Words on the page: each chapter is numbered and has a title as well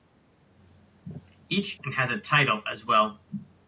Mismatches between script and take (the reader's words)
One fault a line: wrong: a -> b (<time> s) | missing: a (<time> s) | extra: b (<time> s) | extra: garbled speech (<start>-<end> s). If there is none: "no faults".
missing: chapter is numbered (1.8 s)